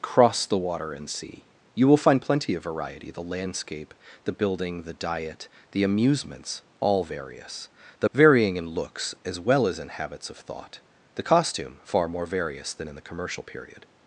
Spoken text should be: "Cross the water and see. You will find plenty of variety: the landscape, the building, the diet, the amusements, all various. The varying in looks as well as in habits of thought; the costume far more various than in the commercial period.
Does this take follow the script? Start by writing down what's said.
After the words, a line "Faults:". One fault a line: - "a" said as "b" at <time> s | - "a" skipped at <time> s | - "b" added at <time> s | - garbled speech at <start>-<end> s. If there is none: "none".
"Cross the water and see. You will find plenty of variety: the landscape, the building, the diet, the amusements, all various. The varying in looks as well as in habits of thought; the costume far more various than in the commercial period.
Faults:
none